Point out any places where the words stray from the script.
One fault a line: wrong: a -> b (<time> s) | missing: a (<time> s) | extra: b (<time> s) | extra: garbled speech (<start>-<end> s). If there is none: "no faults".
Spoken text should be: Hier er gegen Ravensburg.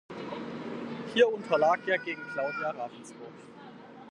extra: unterlag (1.3 s)
extra: Claudia (2.3 s)